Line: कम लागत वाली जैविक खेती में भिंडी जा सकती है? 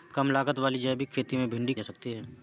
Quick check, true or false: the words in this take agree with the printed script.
true